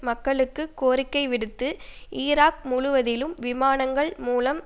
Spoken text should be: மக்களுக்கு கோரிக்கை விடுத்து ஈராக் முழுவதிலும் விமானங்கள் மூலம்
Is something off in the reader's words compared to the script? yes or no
no